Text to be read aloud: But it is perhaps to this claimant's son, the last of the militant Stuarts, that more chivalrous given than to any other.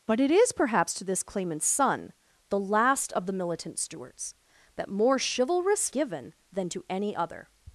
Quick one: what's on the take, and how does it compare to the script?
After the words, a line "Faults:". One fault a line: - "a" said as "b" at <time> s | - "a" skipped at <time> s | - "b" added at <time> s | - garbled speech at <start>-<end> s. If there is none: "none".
But it is perhaps to this claimant's son, the last of the militant Stuarts, that more chivalrous given than to any other.
Faults:
none